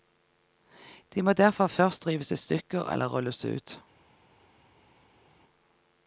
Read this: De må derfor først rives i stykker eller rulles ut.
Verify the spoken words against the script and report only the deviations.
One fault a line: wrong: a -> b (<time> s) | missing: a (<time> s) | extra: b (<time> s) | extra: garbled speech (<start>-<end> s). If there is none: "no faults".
no faults